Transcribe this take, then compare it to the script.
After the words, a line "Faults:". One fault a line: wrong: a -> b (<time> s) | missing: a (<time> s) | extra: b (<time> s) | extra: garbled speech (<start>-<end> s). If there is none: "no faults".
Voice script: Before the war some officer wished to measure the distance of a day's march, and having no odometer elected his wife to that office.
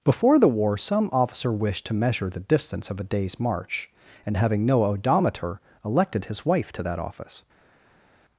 Before the war some officer wished to measure the distance of a day's march, and having no odometer elected his wife to that office.
Faults:
no faults